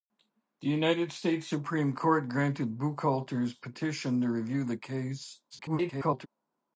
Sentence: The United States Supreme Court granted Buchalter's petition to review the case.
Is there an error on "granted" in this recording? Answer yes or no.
no